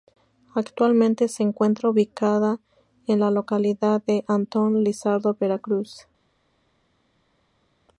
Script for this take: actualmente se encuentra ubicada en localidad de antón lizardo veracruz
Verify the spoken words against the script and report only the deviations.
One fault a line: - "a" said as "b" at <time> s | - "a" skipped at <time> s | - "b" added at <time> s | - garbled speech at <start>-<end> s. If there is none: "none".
- "la" added at 3.2 s